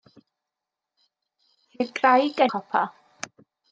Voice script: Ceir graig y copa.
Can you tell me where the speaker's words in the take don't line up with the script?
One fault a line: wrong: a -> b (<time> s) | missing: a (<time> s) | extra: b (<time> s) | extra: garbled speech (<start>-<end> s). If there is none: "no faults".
no faults